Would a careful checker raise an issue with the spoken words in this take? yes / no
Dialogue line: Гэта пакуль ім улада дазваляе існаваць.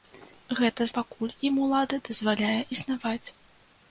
no